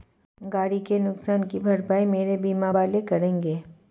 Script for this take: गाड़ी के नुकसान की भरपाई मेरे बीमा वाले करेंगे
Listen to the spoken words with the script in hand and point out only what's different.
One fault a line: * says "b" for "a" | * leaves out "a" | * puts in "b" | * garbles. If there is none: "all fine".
all fine